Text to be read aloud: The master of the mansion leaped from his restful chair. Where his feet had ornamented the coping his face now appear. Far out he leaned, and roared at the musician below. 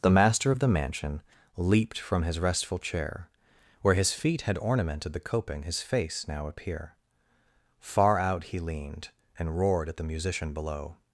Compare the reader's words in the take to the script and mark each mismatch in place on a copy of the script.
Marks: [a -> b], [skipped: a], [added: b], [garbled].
The master of the mansion leaped from his restful chair. Where his feet had ornamented the coping his face now appear. Far out he leaned, and roared at the musician below.